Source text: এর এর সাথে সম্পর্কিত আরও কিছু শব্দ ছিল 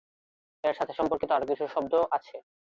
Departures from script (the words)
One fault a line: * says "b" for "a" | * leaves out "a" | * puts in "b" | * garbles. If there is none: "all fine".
* leaves out "এর"
* says "আছে" for "ছিল"